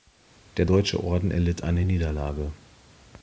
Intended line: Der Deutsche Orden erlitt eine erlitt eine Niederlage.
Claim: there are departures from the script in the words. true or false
true